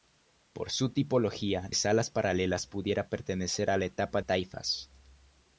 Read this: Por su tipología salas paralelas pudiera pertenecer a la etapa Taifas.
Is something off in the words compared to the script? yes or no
no